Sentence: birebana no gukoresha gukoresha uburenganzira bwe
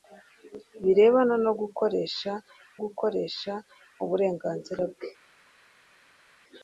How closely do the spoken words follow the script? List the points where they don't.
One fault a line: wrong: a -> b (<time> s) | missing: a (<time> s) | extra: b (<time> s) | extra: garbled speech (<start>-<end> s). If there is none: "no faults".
no faults